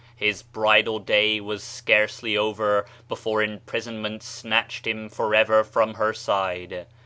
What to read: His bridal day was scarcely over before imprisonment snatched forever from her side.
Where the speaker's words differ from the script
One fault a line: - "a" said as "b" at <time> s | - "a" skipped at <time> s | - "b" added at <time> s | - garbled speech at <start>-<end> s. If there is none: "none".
- "him" added at 4.9 s